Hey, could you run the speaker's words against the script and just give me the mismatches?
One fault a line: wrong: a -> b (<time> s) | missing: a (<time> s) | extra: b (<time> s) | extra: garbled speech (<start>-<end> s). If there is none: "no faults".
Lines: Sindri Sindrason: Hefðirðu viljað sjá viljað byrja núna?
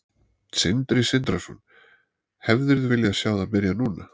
wrong: viljað -> það (3.4 s)